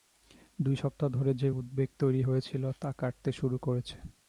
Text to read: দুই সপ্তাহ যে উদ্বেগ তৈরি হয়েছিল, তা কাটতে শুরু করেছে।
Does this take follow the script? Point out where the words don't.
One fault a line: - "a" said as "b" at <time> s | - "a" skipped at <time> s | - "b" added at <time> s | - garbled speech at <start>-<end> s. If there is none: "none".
- "ধরে" added at 1.1 s